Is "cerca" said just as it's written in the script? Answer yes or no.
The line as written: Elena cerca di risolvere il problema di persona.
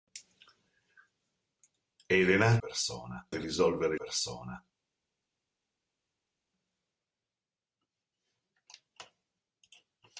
no